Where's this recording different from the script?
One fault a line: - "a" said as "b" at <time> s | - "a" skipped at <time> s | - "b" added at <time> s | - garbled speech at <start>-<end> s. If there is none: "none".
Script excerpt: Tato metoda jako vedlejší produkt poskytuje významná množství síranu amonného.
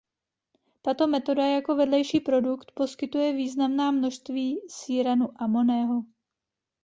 none